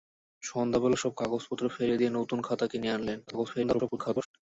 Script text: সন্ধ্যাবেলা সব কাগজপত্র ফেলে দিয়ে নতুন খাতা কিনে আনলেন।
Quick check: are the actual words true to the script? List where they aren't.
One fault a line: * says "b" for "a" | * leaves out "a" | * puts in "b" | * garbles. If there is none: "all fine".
* garbles